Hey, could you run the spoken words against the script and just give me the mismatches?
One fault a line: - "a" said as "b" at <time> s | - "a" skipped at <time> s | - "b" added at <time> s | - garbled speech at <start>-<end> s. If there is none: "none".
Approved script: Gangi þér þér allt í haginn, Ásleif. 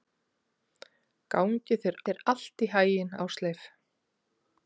none